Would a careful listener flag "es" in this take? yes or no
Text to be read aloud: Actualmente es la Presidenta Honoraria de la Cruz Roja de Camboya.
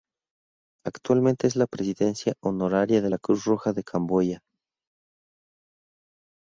no